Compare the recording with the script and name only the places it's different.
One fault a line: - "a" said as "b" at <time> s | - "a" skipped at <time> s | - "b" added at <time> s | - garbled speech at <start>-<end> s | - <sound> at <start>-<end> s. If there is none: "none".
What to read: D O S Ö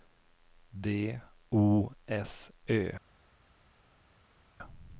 none